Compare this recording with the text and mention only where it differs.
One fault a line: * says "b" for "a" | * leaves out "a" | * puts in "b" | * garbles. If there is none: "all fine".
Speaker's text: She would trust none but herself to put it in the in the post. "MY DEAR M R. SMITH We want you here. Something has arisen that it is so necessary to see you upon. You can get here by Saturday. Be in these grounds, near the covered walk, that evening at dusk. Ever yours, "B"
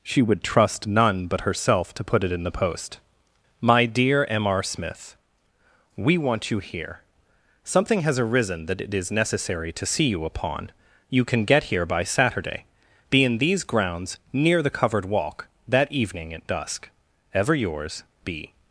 * leaves out "in the"
* leaves out "so"